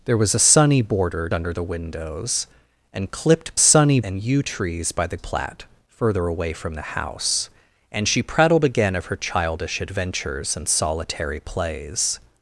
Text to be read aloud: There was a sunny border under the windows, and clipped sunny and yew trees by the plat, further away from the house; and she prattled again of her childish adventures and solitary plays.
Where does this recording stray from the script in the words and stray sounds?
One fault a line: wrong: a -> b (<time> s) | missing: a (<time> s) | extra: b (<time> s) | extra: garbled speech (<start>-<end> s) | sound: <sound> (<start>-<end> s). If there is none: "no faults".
no faults